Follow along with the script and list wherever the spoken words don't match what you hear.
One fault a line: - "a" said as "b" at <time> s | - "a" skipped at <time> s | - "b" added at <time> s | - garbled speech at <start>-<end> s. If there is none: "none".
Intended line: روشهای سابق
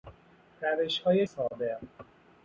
none